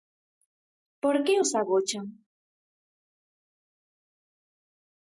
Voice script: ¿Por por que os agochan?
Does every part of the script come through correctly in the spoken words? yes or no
no